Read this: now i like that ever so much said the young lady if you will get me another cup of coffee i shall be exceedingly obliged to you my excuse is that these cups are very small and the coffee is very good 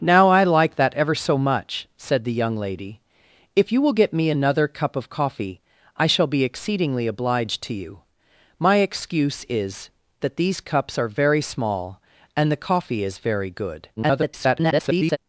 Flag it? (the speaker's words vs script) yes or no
yes